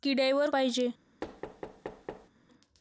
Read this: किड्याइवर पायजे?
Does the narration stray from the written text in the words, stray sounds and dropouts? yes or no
yes